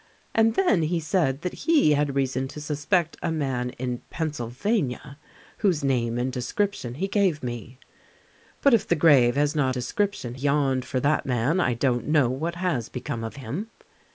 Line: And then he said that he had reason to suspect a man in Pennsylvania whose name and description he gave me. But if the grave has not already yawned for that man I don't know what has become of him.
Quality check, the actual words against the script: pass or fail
fail